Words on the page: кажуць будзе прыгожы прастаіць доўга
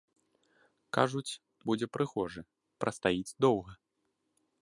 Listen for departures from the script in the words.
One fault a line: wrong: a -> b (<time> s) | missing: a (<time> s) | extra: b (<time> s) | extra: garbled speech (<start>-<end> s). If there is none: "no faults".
no faults